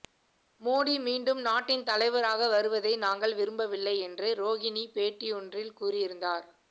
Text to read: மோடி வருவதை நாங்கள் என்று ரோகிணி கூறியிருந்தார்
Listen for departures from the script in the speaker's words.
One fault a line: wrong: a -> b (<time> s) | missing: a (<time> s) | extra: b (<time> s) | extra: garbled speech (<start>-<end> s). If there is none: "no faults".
extra: மீண்டும் நாட்டின் தலைவராக (1.0 s)
extra: விரும்பவில்லை (3.4 s)
extra: பேட்டியொன்றில் (4.9 s)